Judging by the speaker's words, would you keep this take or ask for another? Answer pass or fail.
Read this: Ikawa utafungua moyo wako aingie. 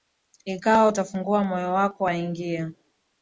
pass